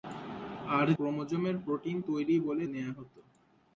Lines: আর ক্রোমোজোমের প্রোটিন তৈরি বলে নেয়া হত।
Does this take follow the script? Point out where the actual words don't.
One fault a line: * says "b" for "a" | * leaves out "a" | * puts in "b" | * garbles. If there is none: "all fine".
all fine